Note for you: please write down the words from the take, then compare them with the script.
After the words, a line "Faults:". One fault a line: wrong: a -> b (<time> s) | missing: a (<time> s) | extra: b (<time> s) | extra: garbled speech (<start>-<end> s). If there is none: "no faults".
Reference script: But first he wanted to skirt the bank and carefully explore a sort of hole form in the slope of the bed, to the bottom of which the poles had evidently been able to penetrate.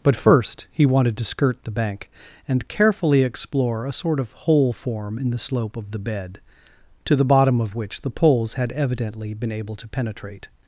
But first he wanted to skirt the bank and carefully explore a sort of hole form in the slope of the bed, to the bottom of which the poles had evidently been able to penetrate.
Faults:
no faults